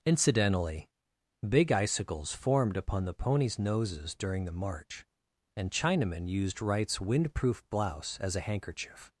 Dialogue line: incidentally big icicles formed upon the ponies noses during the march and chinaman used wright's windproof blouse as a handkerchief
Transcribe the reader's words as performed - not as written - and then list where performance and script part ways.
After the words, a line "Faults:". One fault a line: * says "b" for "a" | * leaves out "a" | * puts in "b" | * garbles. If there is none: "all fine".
incidentally big icicles formed upon the ponies noses during the march and chinaman used wright's windproof blouse as a handkerchief
Faults:
all fine